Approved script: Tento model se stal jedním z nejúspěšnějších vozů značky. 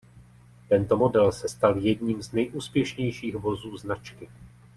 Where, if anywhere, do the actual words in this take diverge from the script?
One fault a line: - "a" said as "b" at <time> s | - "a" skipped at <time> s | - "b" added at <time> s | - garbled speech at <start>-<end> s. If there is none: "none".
none